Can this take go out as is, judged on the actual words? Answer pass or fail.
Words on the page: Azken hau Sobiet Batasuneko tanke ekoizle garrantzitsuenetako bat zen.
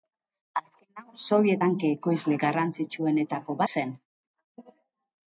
fail